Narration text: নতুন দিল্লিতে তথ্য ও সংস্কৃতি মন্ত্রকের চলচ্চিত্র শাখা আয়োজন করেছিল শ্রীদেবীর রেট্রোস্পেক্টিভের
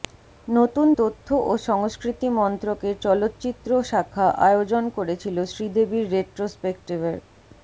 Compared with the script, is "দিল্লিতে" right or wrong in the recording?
wrong